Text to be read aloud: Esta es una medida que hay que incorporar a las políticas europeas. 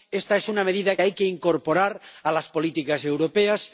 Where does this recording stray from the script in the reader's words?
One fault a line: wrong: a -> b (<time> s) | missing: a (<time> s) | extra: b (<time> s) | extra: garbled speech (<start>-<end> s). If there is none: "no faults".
missing: que (0.9 s)